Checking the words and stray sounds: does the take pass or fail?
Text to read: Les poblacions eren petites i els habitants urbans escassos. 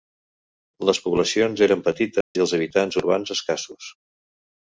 fail